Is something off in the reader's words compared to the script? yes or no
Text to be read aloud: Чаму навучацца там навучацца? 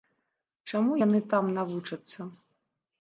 yes